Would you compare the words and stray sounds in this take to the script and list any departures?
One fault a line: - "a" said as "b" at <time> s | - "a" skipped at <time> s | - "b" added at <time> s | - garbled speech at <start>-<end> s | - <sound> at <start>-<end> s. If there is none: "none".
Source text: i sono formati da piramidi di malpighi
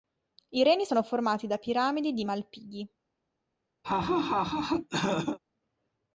- "reni" added at 0.6 s
- laugh at 3.8-5.4 s